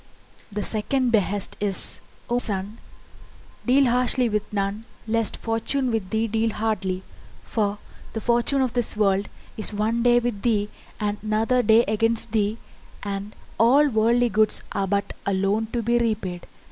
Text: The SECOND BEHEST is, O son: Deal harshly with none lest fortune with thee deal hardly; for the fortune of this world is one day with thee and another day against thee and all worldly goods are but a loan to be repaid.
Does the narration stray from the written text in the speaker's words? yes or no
no